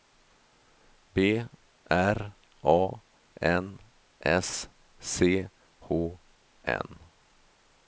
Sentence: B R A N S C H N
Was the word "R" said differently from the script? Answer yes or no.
no